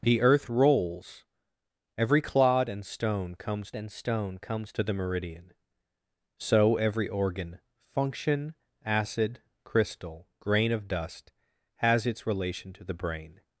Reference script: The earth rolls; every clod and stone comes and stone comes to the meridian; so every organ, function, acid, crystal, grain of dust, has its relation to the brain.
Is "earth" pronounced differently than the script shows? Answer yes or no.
no